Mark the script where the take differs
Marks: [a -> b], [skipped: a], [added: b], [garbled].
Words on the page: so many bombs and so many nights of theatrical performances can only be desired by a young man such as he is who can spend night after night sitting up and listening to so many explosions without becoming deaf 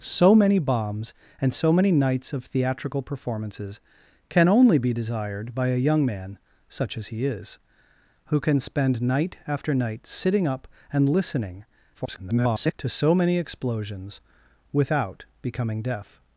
so many bombs and so many nights of theatrical performances can only be desired by a young man such as he is who can spend night after night sitting up and listening [garbled] to so many explosions without becoming deaf